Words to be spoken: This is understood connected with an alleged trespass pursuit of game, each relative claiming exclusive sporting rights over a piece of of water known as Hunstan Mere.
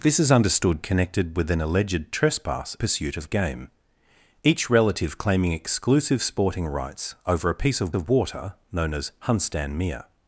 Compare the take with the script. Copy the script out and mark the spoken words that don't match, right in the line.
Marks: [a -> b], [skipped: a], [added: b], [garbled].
This is understood connected with an alleged trespass pursuit of game, each relative claiming exclusive sporting rights over a piece of of water known as Hunstan Mere.